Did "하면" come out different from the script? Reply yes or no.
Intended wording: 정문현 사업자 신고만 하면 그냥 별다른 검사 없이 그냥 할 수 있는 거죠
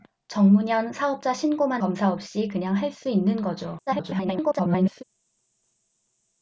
yes